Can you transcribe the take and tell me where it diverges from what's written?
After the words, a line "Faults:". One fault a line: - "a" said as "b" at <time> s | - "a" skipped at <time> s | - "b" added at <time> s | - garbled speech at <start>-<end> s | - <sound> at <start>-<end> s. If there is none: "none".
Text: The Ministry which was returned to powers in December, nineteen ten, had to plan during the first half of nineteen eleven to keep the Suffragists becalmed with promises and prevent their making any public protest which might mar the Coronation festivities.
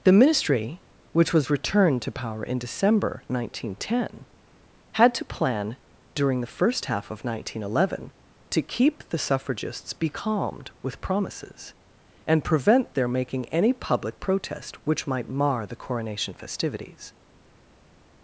The Ministry which was returned to power in December, nineteen ten, had to plan during the first half of nineteen eleven to keep the Suffragists becalmed with promises and prevent their making any public protest which might mar the Coronation festivities.
Faults:
- "powers" said as "power" at 2.1 s